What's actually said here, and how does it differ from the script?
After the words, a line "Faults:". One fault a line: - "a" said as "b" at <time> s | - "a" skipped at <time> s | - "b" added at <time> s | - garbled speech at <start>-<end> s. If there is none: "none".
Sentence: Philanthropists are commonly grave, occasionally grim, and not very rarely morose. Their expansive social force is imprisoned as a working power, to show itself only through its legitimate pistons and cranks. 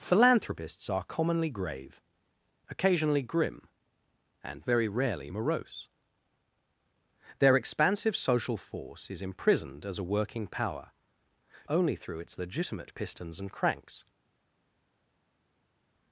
Philanthropists are commonly grave, occasionally grim, and very rarely morose. Their expansive social force is imprisoned as a working power, only through its legitimate pistons and cranks.
Faults:
- "not" skipped at 4.7 s
- "to show itself" skipped at 10.9 s